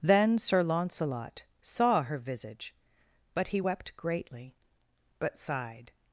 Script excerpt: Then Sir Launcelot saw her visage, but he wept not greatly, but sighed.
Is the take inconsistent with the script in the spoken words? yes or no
yes